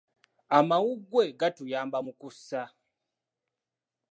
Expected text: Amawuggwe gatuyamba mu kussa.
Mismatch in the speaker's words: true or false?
false